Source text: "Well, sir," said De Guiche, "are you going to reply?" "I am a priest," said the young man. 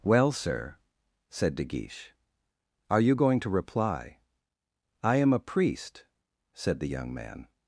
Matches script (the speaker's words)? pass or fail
pass